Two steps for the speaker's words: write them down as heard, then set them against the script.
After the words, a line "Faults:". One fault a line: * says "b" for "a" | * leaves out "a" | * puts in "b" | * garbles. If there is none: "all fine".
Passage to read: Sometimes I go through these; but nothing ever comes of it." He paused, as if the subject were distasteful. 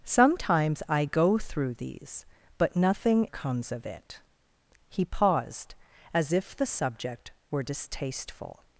Sometimes I go through these; but nothing comes of it." He paused, as if the subject were distasteful.
Faults:
* leaves out "ever"